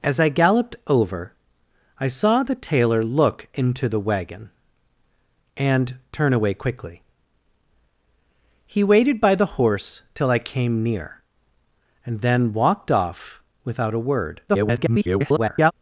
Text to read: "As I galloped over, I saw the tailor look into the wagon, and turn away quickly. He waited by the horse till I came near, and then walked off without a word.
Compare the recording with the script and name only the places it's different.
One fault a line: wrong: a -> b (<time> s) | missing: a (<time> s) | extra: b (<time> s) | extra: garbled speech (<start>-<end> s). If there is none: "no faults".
extra: garbled speech (14.5-15.7 s)